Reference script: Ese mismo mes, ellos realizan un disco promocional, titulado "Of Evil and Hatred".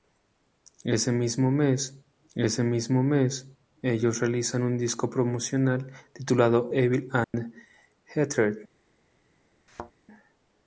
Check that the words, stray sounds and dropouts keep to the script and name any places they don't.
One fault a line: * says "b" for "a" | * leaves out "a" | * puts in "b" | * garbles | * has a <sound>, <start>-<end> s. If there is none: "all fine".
* puts in "ese mismo mes"
* leaves out "Of"
* has a dropout, 7.2-7.3 s
* has a thud, 9.7-9.9 s